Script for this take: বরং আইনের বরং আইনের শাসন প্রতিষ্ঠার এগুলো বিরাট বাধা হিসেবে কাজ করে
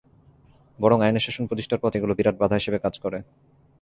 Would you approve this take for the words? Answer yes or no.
no